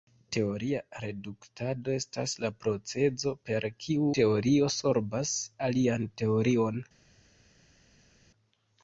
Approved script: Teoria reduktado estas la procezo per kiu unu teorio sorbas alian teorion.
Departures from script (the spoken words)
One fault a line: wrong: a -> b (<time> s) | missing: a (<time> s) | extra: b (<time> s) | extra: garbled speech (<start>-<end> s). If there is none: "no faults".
missing: unu (4.1 s)